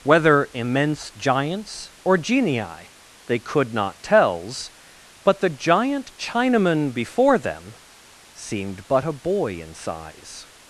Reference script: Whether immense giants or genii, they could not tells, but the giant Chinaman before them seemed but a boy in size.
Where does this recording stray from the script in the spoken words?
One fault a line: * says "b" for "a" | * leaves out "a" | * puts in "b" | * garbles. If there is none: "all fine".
all fine